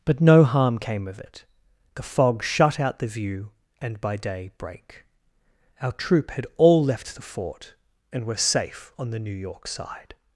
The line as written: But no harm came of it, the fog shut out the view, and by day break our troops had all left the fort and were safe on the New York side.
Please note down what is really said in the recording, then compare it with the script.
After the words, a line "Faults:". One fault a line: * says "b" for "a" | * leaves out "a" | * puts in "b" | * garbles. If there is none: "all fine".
But no harm came of it, the fog shut out the view, and by day break our troop had all left the fort and were safe on the New York side.
Faults:
* says "troop" for "troops"